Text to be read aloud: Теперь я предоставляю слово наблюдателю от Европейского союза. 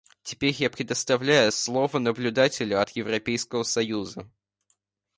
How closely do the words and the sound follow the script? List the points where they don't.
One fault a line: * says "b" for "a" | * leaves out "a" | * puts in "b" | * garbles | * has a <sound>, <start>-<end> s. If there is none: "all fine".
all fine